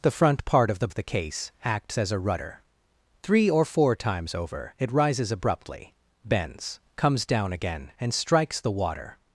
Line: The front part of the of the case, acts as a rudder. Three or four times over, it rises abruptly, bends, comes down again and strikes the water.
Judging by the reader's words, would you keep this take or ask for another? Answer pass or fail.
pass